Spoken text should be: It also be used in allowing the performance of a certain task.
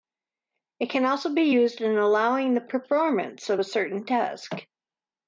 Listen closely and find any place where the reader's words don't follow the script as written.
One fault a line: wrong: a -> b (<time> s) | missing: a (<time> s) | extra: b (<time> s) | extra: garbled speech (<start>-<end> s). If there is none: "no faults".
extra: can (0.9 s)